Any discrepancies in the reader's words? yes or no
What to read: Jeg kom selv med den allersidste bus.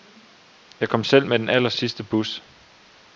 no